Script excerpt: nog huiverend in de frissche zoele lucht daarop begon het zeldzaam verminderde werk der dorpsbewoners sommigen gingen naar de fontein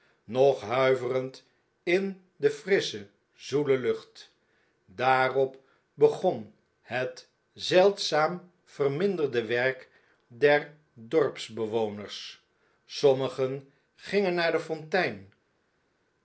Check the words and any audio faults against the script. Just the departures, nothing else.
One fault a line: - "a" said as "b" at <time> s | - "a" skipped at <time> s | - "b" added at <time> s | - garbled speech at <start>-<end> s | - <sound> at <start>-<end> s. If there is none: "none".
none